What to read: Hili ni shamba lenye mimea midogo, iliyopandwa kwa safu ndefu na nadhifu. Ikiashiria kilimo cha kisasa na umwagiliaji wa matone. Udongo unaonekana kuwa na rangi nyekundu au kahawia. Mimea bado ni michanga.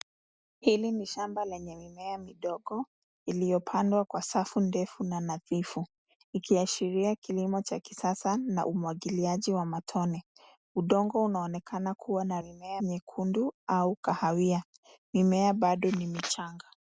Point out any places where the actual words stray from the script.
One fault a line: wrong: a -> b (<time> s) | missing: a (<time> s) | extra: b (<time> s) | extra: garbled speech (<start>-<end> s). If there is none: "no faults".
wrong: rangi -> mimea (12.4 s)